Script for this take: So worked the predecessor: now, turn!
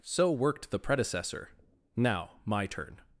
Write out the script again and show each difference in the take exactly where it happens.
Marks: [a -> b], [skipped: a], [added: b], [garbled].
So worked the predecessor: now, [added: my] turn!